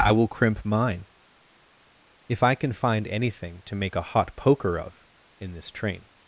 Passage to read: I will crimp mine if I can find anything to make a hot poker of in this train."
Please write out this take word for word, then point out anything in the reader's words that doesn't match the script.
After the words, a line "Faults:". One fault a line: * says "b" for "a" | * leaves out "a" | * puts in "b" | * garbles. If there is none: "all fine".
I will crimp mine if I can find anything to make a hot poker of in this train."
Faults:
all fine